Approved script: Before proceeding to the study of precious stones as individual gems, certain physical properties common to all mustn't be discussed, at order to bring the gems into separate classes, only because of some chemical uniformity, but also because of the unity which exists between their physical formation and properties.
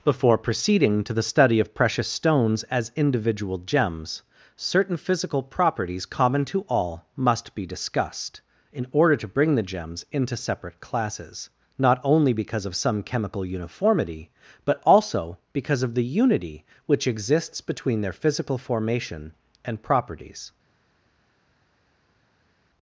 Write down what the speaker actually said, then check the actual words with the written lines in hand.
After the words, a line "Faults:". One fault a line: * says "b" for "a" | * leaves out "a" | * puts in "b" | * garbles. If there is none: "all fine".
Before proceeding to the study of precious stones as individual gems, certain physical properties common to all must be discussed, in order to bring the gems into separate classes, not only because of some chemical uniformity, but also because of the unity which exists between their physical formation and properties.
Faults:
* says "must" for "mustn't"
* says "in" for "at"
* puts in "not"